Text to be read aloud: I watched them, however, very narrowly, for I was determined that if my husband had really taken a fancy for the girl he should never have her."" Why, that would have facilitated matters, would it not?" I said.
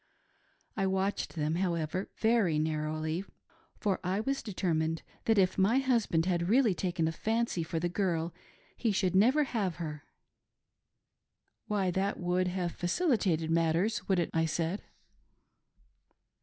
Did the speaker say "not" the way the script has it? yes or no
no